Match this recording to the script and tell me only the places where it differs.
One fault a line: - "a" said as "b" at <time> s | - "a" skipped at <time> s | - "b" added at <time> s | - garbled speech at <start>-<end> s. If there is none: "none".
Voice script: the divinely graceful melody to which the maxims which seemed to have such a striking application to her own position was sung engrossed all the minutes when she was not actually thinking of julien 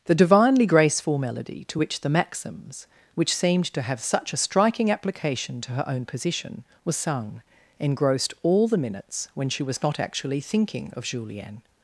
none